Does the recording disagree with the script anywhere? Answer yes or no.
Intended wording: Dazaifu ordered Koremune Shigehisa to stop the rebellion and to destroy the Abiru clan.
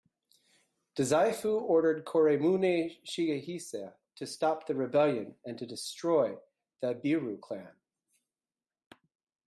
no